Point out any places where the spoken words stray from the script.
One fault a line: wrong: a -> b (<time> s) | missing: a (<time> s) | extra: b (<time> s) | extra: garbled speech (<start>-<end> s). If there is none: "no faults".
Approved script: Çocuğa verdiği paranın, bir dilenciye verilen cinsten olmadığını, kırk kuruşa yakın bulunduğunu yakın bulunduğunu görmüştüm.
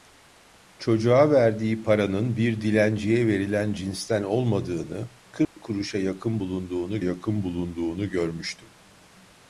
no faults